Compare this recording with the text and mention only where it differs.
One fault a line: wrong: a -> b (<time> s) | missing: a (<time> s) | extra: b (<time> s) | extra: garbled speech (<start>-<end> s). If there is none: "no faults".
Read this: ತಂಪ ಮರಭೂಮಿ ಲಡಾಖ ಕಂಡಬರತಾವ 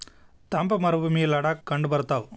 no faults